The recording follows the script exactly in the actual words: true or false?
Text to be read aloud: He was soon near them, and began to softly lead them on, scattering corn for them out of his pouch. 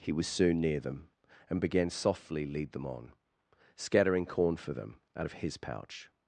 false